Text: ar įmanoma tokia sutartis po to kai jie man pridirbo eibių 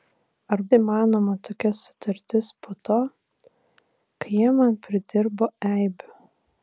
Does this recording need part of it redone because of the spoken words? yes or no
no